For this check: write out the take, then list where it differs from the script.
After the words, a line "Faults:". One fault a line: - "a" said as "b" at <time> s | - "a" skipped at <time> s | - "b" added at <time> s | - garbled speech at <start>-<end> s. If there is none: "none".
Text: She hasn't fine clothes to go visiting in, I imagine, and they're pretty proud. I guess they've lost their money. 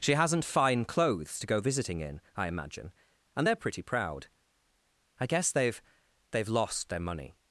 She hasn't fine clothes to go visiting in, I imagine, and they're pretty proud. I guess they've they've lost their money.
Faults:
- "they've" added at 6.3 s